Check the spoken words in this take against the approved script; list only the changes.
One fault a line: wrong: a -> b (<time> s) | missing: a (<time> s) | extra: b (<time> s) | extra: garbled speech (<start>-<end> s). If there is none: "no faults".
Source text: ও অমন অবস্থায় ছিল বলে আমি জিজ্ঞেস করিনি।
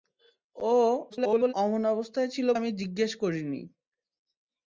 extra: garbled speech (1.1-1.5 s)
missing: বলে (2.5 s)